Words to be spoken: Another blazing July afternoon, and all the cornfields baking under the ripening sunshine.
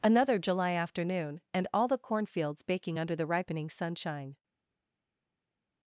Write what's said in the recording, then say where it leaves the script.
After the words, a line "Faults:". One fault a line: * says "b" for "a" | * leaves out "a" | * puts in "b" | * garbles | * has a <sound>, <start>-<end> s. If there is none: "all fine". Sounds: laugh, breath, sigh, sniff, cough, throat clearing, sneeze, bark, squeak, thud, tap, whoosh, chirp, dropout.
Another July afternoon, and all the cornfields baking under the ripening sunshine.
Faults:
* leaves out "blazing"